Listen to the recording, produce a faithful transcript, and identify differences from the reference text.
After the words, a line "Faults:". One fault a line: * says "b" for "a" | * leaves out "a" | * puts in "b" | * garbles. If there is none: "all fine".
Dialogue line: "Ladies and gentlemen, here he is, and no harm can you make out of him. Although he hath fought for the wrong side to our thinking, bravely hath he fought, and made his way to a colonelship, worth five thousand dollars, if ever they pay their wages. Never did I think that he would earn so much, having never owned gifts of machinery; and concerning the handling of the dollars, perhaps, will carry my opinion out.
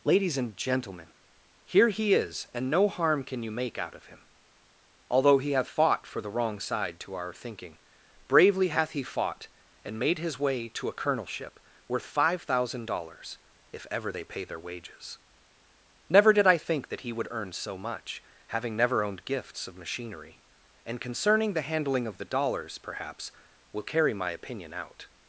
"Ladies and gentlemen, here he is, and no harm can you make out of him. Although he hath fought for the wrong side to our thinking, bravely hath he fought, and made his way to a colonelship, worth five thousand dollars, if ever they pay their wages. Never did I think that he would earn so much, having never owned gifts of machinery; and concerning the handling of the dollars, perhaps, will carry my opinion out.
Faults:
all fine